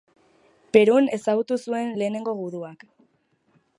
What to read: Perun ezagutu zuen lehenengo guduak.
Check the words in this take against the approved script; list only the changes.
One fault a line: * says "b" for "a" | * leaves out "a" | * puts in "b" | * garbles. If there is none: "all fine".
all fine